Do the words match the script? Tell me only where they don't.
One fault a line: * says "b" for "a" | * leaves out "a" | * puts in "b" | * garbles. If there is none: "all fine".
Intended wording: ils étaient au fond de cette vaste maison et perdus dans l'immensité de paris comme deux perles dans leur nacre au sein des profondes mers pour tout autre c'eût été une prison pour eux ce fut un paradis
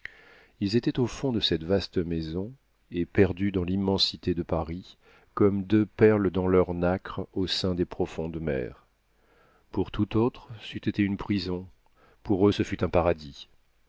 all fine